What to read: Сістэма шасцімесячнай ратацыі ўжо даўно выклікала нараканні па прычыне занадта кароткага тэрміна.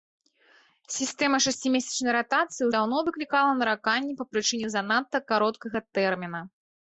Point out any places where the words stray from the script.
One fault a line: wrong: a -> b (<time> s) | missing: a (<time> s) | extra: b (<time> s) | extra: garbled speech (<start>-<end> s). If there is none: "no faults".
missing: ўжо (2.7 s)